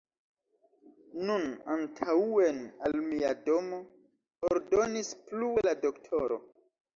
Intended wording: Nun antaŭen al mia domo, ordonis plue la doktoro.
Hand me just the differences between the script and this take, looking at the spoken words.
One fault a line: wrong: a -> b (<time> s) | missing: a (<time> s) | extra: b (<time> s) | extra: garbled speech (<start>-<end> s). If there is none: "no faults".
no faults